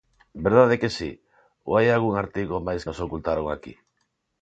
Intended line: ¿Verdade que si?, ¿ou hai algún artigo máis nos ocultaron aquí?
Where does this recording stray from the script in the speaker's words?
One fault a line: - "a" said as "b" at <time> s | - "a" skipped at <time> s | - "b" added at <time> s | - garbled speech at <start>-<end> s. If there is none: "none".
none